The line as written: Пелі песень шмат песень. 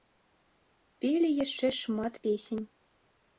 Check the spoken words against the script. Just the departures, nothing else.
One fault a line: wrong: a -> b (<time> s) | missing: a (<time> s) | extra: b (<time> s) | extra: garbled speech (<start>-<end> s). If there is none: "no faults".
wrong: песень -> яшчэ (1.4 s)